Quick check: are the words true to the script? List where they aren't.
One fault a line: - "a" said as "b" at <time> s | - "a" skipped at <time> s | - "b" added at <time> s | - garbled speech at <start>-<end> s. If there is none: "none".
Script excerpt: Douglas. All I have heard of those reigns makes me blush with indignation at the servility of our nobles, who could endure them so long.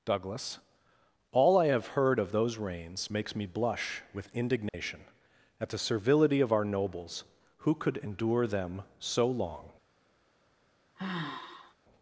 none